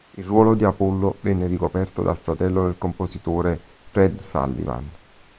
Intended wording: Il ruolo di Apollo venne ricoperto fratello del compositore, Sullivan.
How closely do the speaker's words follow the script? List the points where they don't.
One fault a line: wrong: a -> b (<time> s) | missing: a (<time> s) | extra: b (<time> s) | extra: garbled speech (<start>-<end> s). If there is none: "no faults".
extra: dal (2.0 s)
extra: Fred (3.8 s)